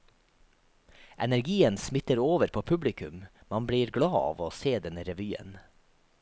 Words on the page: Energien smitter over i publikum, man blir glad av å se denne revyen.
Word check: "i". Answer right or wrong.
wrong